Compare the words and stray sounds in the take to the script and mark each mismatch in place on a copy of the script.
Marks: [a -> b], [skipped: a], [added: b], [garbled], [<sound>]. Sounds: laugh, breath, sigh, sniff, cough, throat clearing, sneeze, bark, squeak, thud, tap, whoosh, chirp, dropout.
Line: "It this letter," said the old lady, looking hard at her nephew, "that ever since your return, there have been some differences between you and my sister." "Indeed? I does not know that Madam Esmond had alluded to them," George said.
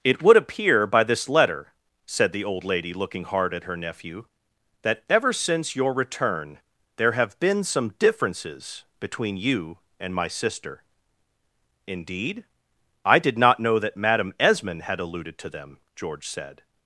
"It [added: would appear by] this letter," said the old lady, looking hard at her nephew, "that ever since your return, there have been some differences between you and my sister." "Indeed? I [does -> did] not know that Madam Esmond had alluded to them," George said.